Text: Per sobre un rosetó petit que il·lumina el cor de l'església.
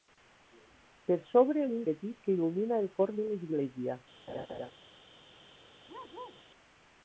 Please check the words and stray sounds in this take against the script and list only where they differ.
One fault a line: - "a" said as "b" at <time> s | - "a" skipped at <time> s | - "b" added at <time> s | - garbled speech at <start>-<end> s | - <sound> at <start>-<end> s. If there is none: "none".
- "rosetó" skipped at 1.9 s
- laugh at 4.3-4.7 s
- bark at 5.9-6.4 s